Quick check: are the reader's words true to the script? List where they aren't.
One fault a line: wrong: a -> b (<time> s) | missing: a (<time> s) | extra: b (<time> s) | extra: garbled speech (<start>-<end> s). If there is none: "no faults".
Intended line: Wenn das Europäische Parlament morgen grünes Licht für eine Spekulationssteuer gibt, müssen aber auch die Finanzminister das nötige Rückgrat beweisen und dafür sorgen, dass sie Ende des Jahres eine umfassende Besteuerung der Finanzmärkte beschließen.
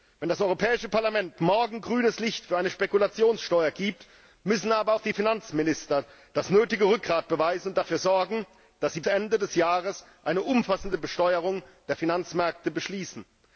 no faults